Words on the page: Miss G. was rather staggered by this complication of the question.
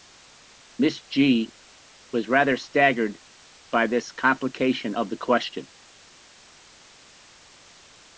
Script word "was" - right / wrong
right